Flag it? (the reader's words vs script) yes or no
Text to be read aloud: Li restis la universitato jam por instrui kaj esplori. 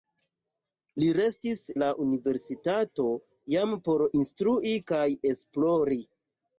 no